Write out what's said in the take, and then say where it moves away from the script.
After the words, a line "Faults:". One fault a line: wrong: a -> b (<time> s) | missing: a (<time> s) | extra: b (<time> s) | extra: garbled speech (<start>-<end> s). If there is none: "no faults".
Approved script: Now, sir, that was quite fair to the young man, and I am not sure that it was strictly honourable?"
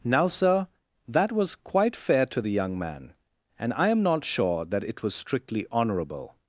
Now, sir, that was quite fair to the young man, and I am not sure that it was strictly honourable?"
Faults:
no faults